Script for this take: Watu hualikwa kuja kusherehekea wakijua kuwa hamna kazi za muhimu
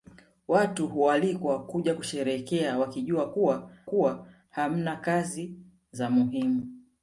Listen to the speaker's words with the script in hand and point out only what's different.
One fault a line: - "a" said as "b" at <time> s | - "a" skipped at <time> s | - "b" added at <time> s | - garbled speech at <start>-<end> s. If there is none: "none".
- "kuwa" added at 3.9 s